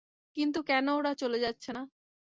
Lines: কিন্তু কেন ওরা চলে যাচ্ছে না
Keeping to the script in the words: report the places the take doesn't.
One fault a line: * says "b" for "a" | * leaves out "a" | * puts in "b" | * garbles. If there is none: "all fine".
all fine